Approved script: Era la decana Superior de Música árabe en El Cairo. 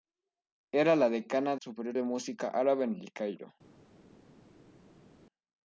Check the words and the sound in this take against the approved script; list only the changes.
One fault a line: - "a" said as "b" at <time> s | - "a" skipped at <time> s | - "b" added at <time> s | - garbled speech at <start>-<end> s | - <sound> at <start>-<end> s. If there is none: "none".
none